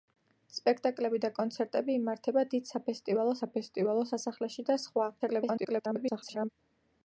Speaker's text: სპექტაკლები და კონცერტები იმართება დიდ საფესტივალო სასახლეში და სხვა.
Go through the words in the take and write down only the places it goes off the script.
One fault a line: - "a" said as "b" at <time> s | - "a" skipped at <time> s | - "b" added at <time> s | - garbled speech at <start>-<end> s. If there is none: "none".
- "საფესტივალო" added at 3.4 s
- garbled speech at 5.2-6.5 s